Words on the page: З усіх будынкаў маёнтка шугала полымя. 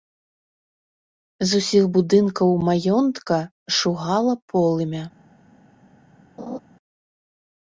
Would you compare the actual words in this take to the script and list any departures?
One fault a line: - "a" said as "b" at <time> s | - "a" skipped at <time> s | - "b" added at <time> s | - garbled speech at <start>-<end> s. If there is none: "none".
none